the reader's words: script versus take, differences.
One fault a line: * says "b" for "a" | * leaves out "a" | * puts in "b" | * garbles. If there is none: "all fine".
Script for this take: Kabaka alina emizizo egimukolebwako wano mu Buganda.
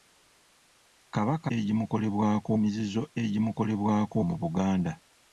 * says "egimukolebwako" for "alina"
* leaves out "wano"